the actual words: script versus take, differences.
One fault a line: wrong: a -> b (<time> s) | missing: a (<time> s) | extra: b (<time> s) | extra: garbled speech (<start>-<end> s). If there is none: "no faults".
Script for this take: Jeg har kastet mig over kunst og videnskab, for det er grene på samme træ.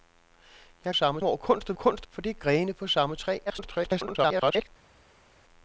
wrong: kastet -> samme (0.9 s)
wrong: videnskab -> kunst (1.7 s)
extra: garbled speech (3.5-4.7 s)